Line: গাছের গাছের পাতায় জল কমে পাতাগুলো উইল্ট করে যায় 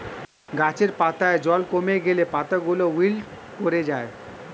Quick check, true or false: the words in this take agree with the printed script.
false